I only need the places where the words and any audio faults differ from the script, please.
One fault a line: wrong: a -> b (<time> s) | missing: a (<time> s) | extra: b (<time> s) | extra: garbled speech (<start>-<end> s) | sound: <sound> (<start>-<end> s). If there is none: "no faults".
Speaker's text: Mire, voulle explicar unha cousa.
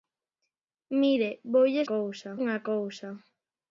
wrong: explicar -> cousa (1.9 s)